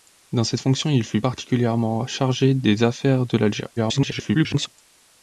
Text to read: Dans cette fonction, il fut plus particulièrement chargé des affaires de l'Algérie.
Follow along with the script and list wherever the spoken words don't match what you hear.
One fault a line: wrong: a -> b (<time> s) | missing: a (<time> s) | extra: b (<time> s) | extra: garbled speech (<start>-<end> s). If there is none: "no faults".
missing: plus (1.2 s)
extra: garbled speech (3.8-4.7 s)